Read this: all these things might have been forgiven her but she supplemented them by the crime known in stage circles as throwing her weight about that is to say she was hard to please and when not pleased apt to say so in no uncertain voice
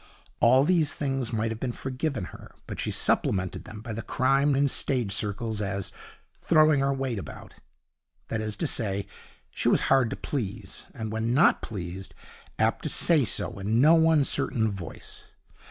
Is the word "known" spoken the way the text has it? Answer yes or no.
no